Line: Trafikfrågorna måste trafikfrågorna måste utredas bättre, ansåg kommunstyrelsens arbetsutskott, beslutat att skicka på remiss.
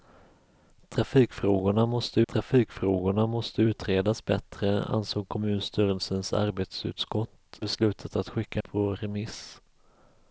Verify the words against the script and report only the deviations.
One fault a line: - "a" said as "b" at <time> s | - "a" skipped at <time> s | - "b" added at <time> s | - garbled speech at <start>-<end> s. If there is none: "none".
none